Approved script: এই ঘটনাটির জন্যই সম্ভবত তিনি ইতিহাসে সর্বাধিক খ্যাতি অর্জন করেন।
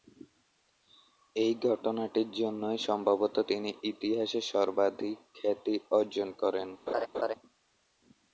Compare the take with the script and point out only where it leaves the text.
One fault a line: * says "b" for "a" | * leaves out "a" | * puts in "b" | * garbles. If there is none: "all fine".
all fine